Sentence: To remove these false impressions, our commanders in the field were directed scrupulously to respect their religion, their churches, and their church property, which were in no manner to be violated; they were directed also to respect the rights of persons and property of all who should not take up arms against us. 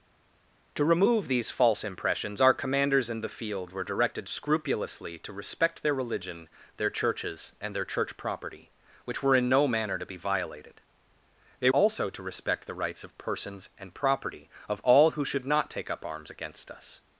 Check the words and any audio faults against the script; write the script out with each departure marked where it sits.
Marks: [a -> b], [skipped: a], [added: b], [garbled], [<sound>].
To remove these false impressions, our commanders in the field were directed scrupulously to respect their religion, their churches, and their church property, which were in no manner to be violated; they [skipped: were directed] also to respect the rights of persons and property of all who should not take up arms against us.